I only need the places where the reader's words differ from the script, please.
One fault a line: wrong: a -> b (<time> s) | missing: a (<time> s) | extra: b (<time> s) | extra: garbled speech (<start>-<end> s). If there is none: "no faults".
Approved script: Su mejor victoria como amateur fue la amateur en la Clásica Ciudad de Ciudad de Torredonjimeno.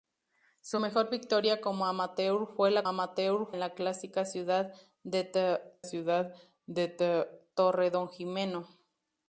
no faults